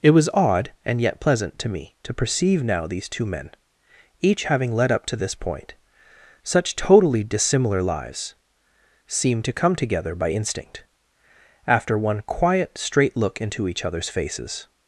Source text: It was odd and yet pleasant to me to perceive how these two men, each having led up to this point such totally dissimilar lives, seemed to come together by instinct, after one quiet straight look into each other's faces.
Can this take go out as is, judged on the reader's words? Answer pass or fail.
fail